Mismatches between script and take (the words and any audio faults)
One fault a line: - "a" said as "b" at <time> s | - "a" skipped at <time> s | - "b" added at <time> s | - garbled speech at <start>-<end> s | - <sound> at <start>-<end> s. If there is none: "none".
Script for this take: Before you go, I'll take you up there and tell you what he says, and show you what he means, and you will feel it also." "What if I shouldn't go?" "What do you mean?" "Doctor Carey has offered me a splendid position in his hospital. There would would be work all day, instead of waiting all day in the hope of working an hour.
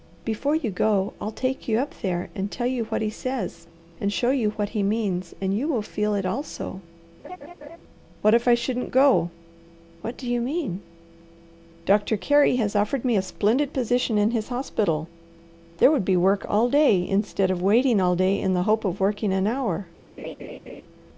- laugh at 7.2-7.8 s
- "would" skipped at 16.0 s
- laugh at 20.2-20.8 s